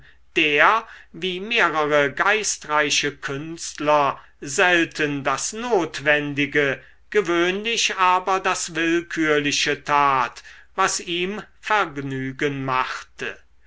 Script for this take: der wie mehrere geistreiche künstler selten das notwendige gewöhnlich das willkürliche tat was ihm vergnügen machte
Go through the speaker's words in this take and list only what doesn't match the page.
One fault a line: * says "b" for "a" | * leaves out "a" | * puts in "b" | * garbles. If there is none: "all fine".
* puts in "aber"